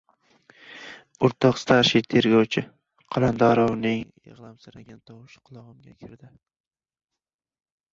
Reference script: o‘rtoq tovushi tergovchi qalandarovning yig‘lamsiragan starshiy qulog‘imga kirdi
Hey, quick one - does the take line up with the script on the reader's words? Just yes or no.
no